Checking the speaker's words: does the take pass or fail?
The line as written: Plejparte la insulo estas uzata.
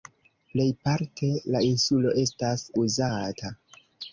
pass